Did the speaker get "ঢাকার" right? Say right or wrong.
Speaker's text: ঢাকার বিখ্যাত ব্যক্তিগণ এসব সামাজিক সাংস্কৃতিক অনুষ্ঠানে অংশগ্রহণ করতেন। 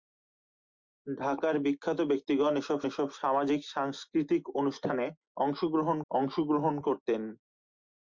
right